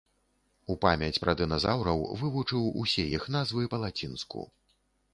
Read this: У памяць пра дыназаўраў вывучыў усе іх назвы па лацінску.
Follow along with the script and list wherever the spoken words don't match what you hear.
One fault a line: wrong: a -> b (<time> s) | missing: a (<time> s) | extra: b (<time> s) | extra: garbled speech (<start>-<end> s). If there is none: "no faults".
no faults